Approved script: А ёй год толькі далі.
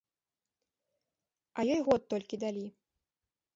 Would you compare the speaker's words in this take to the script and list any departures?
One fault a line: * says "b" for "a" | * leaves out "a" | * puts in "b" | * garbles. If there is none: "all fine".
all fine